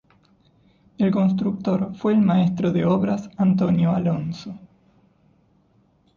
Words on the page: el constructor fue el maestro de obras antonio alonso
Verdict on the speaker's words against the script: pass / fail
pass